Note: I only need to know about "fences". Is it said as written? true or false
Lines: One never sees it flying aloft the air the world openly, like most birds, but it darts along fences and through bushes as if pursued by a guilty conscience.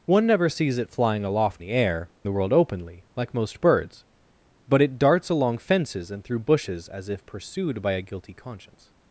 true